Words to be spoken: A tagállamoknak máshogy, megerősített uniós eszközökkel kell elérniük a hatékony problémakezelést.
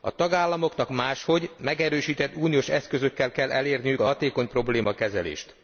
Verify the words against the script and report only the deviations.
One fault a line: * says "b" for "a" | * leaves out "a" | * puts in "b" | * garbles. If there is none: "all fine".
all fine